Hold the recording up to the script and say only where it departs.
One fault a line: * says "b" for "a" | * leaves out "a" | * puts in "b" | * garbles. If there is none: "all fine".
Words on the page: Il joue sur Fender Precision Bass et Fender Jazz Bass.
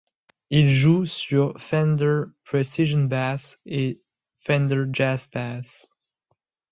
all fine